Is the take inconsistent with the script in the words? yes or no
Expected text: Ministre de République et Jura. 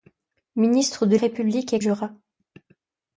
no